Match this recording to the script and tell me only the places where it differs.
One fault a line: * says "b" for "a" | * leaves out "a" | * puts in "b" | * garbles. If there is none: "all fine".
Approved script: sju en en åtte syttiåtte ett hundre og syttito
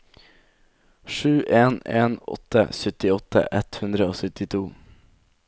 all fine